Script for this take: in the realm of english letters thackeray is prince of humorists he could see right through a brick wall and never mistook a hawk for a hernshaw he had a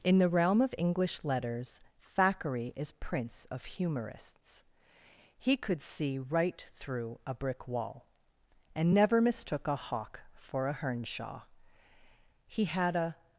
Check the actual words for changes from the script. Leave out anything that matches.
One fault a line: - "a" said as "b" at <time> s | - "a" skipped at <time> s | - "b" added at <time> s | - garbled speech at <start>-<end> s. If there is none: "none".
none